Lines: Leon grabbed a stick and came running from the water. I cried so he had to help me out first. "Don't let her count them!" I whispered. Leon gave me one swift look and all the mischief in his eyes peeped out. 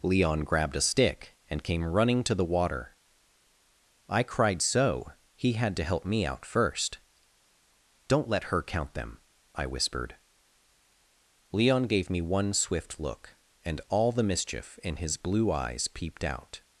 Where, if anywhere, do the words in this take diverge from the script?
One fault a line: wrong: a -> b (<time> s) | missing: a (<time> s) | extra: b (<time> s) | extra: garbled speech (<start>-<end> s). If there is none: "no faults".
wrong: from -> to (2.2 s)
extra: blue (15.2 s)